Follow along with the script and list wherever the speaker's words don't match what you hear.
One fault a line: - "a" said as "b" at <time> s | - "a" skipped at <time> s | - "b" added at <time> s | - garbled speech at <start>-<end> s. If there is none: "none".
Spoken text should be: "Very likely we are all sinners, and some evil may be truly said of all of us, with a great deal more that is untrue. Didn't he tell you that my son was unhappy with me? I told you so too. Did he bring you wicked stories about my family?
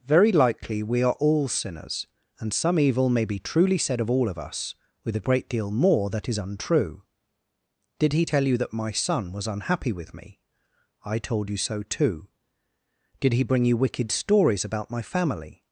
- "Didn't" said as "Did" at 8.0 s